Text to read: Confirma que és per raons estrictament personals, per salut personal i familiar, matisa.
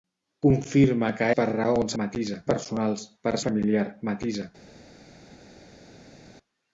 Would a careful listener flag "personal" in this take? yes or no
yes